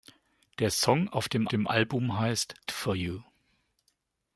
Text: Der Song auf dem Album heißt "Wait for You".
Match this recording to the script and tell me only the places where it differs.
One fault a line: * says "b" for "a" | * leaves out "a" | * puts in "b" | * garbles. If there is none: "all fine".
* puts in "dem"
* leaves out "Wait"